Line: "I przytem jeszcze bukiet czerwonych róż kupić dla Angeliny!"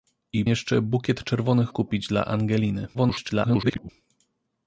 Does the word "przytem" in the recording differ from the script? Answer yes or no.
yes